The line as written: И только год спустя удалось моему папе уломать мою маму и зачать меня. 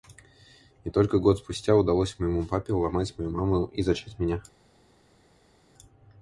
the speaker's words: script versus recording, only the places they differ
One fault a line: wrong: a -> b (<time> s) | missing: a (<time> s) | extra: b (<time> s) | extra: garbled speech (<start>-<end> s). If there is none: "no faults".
no faults